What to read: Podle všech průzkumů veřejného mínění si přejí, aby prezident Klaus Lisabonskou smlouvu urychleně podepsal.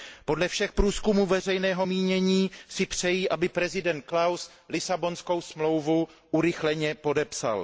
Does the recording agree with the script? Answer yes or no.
yes